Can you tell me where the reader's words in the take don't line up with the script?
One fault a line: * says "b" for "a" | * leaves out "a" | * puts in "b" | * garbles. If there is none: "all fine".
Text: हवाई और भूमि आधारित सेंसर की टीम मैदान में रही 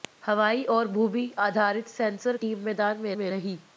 * leaves out "की"
* puts in "में"